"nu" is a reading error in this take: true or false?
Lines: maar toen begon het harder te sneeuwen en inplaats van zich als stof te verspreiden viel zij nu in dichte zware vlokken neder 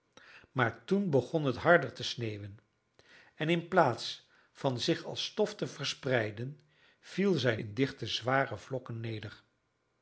true